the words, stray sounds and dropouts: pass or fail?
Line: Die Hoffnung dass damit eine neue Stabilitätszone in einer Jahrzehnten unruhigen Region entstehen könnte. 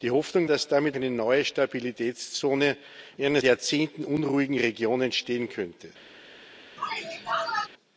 fail